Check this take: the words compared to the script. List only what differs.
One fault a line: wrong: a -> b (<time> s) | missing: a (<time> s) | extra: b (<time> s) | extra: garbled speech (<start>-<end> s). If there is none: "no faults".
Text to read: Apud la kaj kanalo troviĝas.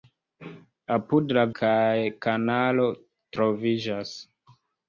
no faults